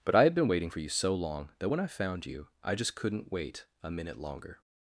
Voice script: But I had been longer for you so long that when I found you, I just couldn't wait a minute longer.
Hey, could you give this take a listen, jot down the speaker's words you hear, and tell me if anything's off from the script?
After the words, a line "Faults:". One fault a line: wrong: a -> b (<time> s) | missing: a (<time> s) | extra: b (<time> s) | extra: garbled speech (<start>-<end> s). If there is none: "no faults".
But I had been waiting for you so long that when I found you, I just couldn't wait a minute longer.
Faults:
wrong: longer -> waiting (0.5 s)